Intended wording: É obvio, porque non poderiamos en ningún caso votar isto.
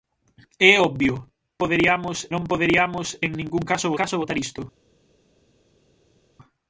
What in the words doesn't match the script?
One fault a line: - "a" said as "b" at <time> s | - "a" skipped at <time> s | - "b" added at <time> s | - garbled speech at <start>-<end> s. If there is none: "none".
- "porque" said as "poderiamos" at 1.6 s
- "caso" added at 4.0 s